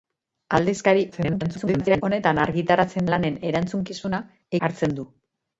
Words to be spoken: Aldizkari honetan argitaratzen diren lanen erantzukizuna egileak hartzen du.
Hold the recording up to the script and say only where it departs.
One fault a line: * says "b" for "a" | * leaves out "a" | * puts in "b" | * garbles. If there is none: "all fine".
* garbles
* leaves out "diren"
* leaves out "egileak"